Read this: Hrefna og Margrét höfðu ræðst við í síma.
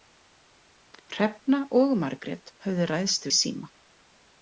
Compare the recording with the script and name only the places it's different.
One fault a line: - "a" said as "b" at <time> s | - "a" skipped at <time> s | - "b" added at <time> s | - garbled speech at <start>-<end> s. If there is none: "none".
- "við" skipped at 3.3 s